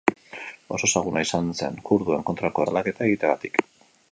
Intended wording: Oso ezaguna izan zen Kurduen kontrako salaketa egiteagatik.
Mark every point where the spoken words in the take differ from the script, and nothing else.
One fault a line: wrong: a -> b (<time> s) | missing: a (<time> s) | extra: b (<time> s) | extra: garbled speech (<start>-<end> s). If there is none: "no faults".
no faults